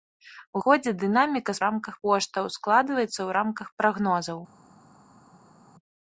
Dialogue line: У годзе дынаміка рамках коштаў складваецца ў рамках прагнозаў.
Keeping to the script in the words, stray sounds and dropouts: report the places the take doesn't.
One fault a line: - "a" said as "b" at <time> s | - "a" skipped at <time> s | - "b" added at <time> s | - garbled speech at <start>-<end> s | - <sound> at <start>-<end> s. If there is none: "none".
none